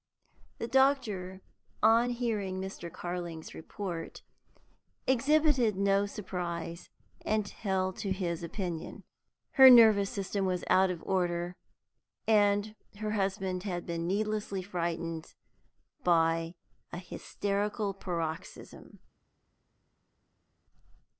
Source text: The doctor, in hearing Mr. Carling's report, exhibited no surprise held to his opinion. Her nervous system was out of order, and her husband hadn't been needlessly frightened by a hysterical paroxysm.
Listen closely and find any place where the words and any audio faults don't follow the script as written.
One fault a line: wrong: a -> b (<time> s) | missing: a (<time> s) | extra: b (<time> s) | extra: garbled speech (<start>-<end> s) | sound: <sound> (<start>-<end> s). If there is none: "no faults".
wrong: in -> on (1.8 s)
extra: and (7.3 s)
wrong: hadn't -> had (13.6 s)